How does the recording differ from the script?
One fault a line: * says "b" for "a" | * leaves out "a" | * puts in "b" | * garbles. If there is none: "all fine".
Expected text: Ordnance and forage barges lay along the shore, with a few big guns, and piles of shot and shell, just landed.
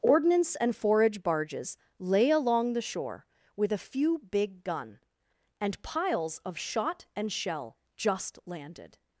* says "gun" for "guns"